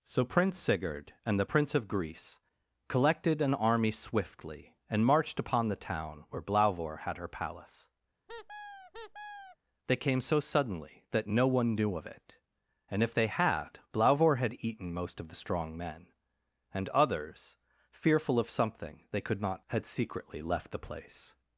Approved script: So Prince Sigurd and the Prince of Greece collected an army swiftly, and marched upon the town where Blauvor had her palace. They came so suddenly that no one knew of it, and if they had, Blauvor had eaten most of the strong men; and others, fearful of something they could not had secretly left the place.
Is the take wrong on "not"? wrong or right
right